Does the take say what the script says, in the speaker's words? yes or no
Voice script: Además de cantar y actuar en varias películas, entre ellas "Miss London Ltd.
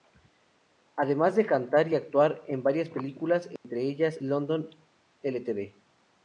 no